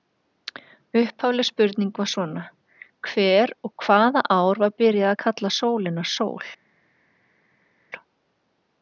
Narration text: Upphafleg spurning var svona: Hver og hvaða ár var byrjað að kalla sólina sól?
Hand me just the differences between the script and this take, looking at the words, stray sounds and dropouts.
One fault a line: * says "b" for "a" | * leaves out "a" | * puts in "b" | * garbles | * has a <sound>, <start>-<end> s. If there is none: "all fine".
all fine